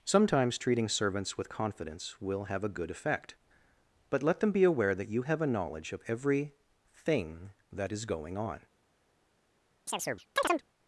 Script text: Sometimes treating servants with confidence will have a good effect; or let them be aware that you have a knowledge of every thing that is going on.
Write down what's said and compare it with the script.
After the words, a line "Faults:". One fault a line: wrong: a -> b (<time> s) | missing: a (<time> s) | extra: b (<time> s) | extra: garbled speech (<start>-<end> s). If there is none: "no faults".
Sometimes treating servants with confidence will have a good effect; but let them be aware that you have a knowledge of every thing that is going on.
Faults:
wrong: or -> but (4.1 s)